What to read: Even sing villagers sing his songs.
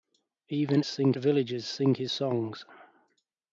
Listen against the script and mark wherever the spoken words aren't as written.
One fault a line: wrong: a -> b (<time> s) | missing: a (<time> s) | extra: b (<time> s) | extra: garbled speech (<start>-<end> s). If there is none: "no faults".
no faults